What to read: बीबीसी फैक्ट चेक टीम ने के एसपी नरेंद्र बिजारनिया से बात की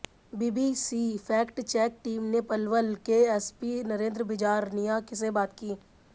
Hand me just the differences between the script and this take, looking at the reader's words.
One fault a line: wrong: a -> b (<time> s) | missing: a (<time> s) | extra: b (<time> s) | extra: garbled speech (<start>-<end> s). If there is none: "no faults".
extra: पलवल (2.5 s)